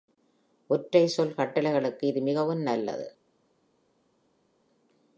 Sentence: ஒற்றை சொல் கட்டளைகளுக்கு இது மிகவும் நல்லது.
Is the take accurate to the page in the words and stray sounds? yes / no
yes